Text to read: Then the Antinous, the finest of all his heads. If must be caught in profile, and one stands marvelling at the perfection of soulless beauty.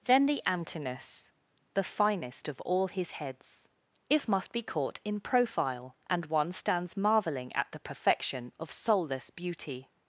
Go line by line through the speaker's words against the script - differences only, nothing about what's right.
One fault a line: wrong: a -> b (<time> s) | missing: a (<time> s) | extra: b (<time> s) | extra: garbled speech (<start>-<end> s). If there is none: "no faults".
no faults